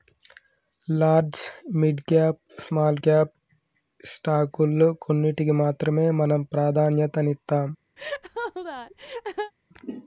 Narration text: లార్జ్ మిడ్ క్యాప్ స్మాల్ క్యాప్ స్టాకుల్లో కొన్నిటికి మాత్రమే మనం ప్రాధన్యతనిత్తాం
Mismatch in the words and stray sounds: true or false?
true